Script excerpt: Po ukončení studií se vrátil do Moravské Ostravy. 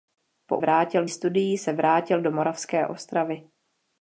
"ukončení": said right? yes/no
no